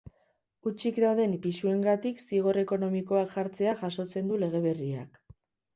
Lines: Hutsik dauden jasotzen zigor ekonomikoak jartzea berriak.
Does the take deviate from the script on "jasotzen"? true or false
true